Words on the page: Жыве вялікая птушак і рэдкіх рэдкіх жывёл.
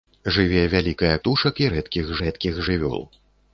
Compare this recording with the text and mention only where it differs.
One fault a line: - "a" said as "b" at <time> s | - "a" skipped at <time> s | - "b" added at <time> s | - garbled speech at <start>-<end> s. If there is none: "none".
none